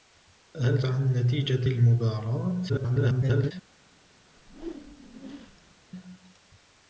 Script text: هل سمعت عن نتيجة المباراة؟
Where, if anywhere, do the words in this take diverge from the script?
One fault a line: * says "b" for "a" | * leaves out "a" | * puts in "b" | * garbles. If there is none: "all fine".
* leaves out "سمعت"
* garbles